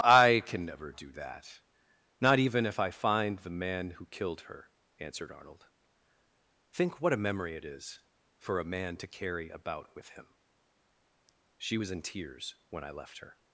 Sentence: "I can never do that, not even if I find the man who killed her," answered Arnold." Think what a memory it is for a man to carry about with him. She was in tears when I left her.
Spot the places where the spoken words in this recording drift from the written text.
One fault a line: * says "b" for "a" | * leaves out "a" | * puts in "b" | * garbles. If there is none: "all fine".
all fine